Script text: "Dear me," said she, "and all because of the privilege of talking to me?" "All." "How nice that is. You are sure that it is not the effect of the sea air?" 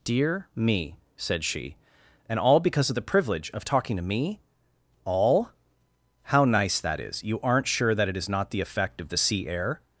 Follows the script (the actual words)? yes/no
no